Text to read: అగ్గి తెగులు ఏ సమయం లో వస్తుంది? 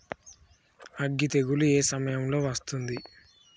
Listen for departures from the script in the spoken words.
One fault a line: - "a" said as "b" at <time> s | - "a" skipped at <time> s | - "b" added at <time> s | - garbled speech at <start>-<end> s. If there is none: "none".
none